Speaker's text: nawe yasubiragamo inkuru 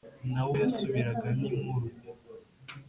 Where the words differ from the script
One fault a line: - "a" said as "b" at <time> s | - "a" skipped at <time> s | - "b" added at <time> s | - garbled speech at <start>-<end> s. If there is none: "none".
none